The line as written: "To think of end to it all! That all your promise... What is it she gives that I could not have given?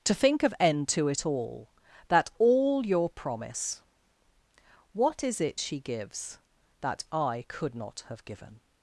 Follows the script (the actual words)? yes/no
yes